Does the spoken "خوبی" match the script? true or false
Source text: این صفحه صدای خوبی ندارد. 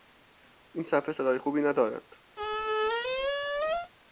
true